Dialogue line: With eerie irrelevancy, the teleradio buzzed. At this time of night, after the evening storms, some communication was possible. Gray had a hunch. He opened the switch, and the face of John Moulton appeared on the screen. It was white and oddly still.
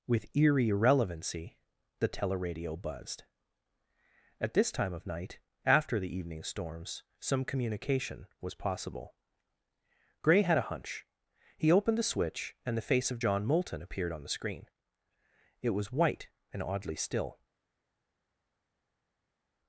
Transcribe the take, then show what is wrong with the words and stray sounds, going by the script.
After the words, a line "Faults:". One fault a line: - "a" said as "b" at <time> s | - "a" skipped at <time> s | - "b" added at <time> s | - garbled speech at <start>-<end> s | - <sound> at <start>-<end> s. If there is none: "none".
With eerie irrelevancy, the teleradio buzzed. At this time of night, after the evening storms, some communication was possible. Gray had a hunch. He opened the switch, and the face of John Moulton appeared on the screen. It was white and oddly still.
Faults:
none